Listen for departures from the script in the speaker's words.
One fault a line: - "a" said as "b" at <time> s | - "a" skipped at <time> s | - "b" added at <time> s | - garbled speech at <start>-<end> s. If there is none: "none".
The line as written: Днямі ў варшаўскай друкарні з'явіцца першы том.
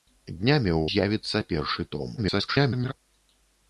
- "варшаўскай друкарні" skipped at 0.8 s
- garbled speech at 2.2-2.9 s